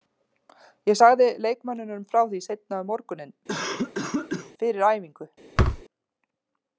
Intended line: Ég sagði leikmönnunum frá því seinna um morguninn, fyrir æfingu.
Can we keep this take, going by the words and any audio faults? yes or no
no